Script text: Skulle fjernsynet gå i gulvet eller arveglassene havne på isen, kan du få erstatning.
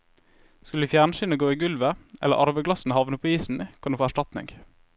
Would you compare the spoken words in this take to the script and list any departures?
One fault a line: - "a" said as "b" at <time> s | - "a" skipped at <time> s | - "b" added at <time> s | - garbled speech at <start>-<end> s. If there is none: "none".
none